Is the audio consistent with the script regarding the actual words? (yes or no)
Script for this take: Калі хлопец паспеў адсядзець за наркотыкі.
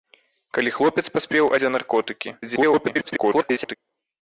no